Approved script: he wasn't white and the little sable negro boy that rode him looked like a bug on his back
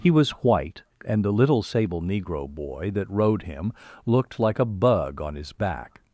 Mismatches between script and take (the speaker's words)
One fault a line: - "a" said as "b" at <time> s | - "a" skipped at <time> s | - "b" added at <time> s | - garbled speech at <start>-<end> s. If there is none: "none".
- "wasn't" said as "was" at 0.1 s